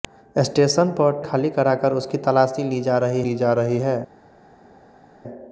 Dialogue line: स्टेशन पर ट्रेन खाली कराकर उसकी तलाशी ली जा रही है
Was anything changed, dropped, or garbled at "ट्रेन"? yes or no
yes